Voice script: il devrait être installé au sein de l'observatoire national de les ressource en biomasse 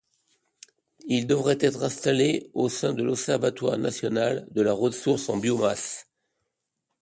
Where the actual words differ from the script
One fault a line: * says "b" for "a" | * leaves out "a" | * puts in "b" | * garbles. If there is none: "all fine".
* says "la" for "les"